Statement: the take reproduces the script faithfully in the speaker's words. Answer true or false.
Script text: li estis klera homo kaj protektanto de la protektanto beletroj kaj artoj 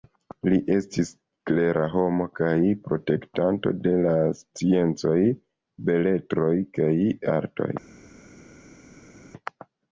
false